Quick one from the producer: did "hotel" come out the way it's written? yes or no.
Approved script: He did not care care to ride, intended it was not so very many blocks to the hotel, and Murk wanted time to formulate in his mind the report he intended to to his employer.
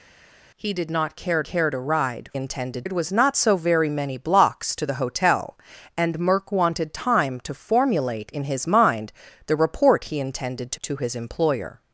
yes